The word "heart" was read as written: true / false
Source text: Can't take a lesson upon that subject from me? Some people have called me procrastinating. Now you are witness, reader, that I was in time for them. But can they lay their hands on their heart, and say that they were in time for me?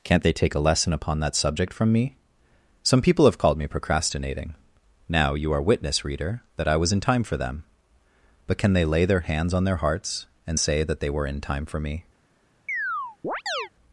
false